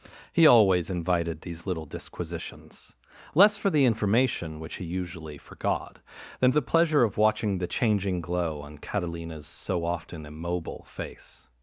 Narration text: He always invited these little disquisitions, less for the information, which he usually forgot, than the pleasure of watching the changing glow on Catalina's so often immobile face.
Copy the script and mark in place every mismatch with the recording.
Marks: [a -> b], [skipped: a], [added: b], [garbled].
He always invited these little disquisitions, less for the information, which he usually forgot, than the pleasure of watching the changing glow on Catalina's so often immobile face.